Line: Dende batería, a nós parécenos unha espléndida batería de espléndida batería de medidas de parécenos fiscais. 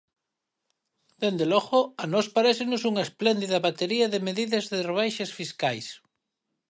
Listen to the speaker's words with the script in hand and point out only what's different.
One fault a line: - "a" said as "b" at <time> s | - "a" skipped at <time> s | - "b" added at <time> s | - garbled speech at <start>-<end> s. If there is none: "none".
- "batería" said as "logo" at 1.5 s
- "espléndida batería de" skipped at 4.2 s
- "parécenos" said as "rebaixas" at 4.9 s